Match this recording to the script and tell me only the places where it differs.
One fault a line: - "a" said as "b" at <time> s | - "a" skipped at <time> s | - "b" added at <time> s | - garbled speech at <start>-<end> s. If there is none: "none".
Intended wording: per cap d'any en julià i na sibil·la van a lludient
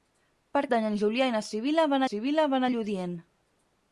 - "cap" skipped at 0.6 s
- "sibil·la van" added at 2.1 s